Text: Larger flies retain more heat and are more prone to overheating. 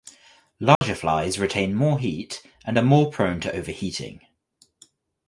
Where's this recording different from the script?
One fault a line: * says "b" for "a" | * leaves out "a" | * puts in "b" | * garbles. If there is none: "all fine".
all fine